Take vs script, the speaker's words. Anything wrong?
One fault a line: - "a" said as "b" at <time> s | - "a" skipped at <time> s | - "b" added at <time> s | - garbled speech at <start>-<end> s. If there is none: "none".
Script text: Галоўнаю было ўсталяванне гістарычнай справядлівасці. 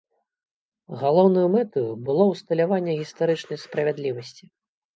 - "мэтаю" added at 1.6 s